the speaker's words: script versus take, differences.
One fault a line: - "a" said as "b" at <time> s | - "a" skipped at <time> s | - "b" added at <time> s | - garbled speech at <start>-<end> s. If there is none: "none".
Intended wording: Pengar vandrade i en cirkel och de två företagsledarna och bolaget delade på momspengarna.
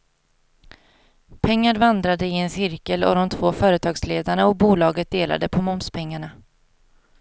none